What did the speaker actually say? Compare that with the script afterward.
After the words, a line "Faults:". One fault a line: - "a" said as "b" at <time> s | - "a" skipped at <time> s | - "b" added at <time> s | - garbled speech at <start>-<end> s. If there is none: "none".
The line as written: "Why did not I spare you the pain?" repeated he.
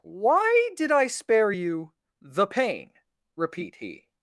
"Why did I spare you the pain?" repeat he.
Faults:
- "not" skipped at 0.9 s
- "repeated" said as "repeat" at 3.3 s